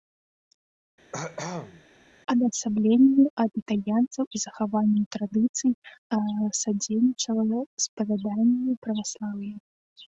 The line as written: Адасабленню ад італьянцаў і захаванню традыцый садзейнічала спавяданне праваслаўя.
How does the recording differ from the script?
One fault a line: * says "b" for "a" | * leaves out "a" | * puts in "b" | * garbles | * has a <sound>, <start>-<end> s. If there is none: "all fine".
* has a cough, 1.1-1.8 s